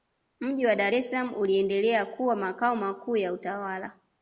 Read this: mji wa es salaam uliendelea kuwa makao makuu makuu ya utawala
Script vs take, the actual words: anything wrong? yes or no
yes